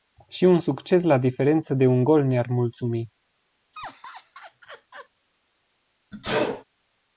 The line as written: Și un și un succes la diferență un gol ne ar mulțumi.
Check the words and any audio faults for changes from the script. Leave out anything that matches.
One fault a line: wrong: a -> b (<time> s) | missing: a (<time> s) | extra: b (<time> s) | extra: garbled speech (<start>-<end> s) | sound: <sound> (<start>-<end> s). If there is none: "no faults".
missing: și un (0.6 s)
extra: de (1.7 s)
sound: laugh (3.7-5.1 s)
sound: sneeze (6.1-6.6 s)